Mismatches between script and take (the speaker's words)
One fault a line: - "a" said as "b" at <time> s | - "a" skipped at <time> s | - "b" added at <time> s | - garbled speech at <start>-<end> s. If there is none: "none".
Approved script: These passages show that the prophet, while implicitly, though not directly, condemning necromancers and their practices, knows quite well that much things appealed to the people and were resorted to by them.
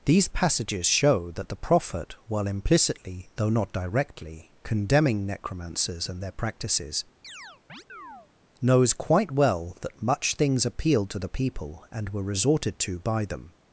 none